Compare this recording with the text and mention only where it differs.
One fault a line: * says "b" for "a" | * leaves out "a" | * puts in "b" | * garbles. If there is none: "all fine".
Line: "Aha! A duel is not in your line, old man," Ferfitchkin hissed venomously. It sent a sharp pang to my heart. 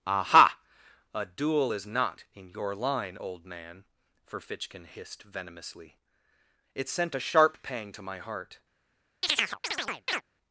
all fine